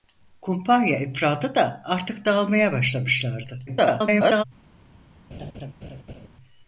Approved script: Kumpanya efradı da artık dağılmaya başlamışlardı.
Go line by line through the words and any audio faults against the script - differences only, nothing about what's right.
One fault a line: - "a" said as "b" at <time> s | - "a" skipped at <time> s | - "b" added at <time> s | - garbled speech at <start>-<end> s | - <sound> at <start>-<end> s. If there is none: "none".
- garbled speech at 3.7-4.4 s
- laugh at 5.3-6.3 s